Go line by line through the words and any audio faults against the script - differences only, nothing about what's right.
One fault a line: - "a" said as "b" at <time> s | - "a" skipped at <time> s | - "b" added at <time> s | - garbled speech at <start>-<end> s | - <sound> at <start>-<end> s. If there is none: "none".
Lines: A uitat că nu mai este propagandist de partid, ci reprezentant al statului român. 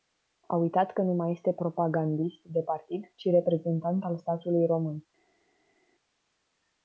none